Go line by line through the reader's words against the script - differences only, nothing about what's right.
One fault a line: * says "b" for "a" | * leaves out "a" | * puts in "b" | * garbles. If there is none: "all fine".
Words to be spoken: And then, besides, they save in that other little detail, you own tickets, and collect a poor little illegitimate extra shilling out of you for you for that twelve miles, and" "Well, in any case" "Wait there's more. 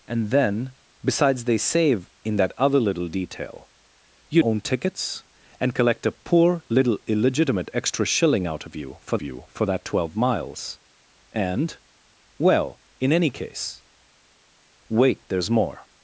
all fine